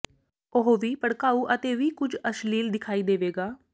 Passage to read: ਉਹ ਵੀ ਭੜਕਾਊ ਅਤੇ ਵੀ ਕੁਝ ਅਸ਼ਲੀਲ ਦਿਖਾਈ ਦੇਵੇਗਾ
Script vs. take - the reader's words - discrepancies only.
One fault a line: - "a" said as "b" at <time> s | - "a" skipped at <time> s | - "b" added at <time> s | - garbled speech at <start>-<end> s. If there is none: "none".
none